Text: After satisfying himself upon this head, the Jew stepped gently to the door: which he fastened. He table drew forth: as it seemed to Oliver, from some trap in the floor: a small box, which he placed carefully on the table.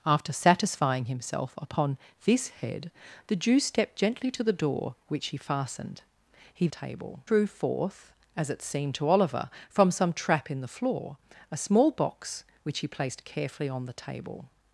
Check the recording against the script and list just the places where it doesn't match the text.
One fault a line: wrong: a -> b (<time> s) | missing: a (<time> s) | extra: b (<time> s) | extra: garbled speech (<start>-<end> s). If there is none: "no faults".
no faults